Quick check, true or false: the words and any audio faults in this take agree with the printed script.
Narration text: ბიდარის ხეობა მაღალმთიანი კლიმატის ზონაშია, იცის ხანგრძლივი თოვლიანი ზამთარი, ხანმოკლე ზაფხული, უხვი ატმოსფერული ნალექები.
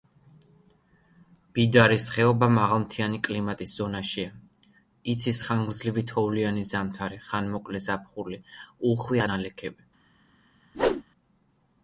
false